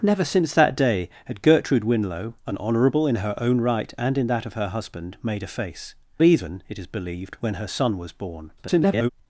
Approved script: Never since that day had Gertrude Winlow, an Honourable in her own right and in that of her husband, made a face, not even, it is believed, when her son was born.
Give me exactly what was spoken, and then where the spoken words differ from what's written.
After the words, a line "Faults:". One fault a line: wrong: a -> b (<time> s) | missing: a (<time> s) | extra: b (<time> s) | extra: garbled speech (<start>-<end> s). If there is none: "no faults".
Never since that day had Gertrude Winlow, an Honourable in her own right and in that of her husband, made a face, even, it is believed, when her son was born. [garbled]
Faults:
missing: not (5.9 s)
extra: garbled speech (8.6-9.1 s)